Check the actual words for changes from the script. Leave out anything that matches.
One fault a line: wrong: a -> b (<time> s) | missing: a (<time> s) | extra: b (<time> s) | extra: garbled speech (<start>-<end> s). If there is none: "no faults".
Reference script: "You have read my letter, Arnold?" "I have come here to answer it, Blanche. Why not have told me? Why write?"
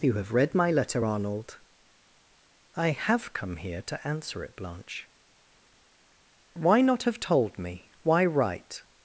no faults